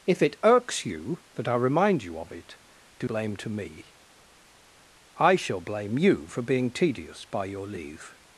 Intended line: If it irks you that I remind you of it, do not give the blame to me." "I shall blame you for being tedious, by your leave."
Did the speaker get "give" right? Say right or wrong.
wrong